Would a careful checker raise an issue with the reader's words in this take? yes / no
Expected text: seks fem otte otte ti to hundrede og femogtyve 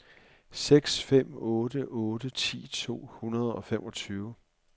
no